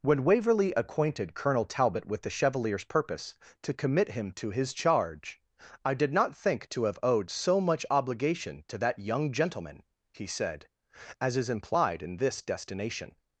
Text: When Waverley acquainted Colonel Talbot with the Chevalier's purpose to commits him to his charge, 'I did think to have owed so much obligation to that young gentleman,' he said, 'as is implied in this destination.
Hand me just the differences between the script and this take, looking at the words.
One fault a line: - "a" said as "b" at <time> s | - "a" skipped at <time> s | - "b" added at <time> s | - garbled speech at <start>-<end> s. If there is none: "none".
- "commits" said as "commit" at 3.7 s
- "not" added at 6.1 s